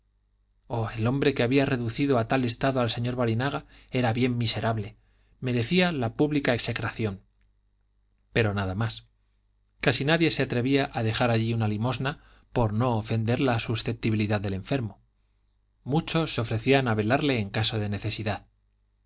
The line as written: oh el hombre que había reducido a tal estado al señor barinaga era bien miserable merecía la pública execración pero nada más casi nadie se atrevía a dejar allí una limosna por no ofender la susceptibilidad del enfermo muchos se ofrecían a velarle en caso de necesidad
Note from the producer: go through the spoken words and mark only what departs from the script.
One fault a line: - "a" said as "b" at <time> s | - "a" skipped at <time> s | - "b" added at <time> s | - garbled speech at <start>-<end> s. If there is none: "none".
none